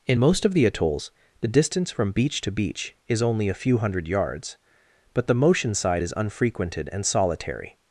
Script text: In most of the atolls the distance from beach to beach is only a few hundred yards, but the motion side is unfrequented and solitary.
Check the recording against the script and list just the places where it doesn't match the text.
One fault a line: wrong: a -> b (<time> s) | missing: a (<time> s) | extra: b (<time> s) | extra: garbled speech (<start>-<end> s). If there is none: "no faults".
no faults